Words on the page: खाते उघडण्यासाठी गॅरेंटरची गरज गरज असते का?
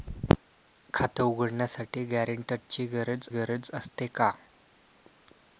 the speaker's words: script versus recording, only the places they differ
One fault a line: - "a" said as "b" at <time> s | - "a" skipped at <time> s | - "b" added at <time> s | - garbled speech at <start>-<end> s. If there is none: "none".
none